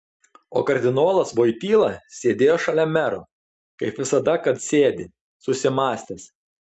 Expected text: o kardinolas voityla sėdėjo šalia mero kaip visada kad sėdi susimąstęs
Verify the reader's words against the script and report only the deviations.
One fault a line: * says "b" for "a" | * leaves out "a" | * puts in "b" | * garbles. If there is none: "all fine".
all fine